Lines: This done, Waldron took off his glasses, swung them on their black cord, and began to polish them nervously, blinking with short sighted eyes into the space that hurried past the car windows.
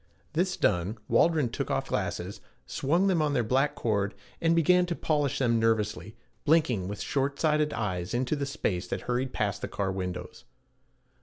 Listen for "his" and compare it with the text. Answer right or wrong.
wrong